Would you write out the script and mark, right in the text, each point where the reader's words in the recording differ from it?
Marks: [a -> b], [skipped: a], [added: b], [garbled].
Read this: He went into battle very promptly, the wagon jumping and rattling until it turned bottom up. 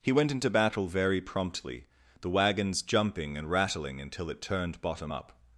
He went into battle very promptly, the [wagon -> wagons] jumping and rattling until it turned bottom up.